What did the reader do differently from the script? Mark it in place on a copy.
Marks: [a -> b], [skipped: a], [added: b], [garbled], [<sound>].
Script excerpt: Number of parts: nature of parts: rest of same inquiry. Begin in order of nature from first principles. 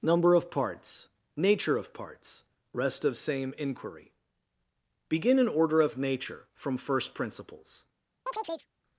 Number of parts: nature of parts: rest of same inquiry. Begin in order of nature from first principles. [chirp]